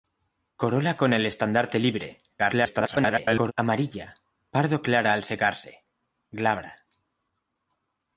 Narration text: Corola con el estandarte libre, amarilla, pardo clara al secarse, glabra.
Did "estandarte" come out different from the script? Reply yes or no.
no